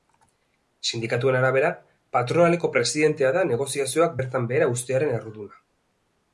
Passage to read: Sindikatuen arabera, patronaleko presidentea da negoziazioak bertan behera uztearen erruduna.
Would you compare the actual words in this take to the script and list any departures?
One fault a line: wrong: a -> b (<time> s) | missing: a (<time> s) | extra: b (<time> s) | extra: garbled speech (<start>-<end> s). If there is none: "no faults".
no faults